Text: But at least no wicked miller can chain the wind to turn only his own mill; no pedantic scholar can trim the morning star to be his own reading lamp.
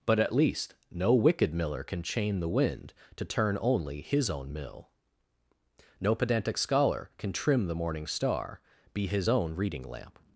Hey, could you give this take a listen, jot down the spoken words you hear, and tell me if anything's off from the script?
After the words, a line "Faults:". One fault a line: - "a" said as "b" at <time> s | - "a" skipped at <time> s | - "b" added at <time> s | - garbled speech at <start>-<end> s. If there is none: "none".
But at least no wicked miller can chain the wind to turn only his own mill; no pedantic scholar can trim the morning star be his own reading lamp.
Faults:
- "to" skipped at 8.6 s